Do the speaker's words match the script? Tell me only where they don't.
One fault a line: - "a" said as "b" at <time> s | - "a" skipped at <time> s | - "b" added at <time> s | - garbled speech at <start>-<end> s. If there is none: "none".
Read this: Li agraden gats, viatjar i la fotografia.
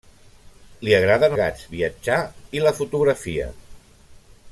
none